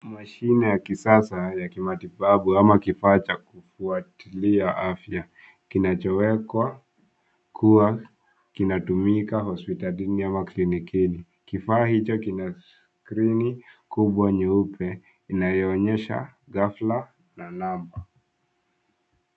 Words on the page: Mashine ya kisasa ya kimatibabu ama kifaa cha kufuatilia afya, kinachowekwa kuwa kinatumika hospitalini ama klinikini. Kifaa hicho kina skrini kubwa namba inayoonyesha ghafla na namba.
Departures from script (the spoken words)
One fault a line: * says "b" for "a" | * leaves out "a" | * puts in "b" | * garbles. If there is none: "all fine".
* says "nyeupe" for "namba"